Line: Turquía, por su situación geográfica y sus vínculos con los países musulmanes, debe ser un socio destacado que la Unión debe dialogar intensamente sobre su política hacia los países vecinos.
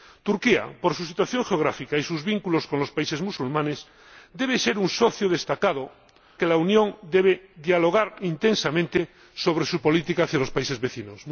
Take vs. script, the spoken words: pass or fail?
pass